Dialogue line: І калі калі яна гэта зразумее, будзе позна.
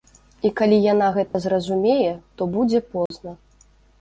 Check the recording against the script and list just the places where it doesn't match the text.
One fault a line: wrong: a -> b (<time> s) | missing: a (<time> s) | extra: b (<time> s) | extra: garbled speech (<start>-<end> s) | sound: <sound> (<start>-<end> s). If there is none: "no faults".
missing: калі (0.8 s)
sound: dropout (1.3-1.3 s)
extra: то (2.4 s)
sound: dropout (3.1-3.1 s)